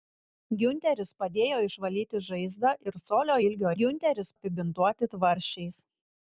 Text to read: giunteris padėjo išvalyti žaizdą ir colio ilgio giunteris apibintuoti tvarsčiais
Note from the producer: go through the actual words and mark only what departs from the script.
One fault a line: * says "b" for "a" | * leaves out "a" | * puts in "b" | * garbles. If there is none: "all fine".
all fine